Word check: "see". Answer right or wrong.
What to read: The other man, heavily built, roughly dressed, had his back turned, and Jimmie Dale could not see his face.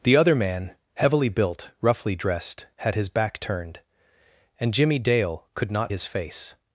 wrong